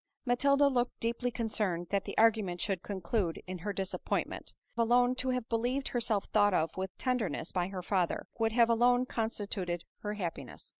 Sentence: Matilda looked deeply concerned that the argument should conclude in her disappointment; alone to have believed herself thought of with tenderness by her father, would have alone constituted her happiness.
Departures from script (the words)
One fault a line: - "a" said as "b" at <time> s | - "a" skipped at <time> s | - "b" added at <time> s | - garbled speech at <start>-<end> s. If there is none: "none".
none